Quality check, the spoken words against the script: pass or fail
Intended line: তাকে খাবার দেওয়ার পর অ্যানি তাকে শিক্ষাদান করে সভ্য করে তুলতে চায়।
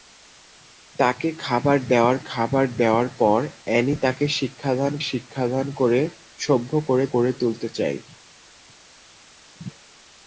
fail